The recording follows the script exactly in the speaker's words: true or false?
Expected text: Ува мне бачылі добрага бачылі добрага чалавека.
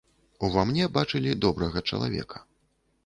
false